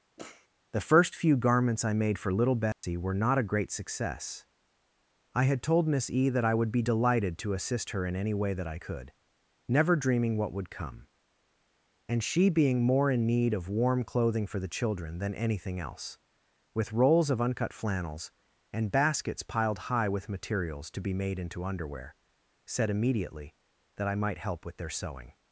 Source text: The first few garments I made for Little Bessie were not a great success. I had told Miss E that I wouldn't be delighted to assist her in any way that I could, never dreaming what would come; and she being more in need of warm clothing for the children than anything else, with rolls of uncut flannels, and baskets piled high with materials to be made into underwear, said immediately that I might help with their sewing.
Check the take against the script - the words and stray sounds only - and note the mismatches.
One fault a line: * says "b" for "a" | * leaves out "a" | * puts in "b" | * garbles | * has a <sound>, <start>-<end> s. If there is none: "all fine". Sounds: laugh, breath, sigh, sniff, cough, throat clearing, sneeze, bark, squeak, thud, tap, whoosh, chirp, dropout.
* has a sniff, 0.2-0.5 s
* has a dropout, 2.7-2.8 s
* says "would" for "wouldn't"